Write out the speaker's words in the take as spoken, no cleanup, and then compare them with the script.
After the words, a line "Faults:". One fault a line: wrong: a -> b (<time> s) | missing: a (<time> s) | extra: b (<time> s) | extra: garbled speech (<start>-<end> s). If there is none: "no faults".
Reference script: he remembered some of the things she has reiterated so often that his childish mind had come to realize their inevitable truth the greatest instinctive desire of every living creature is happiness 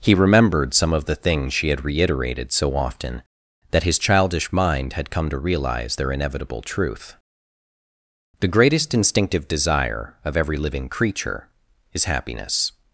he remembered some of the things she had reiterated so often that his childish mind had come to realize their inevitable truth the greatest instinctive desire of every living creature is happiness
Faults:
wrong: has -> had (1.7 s)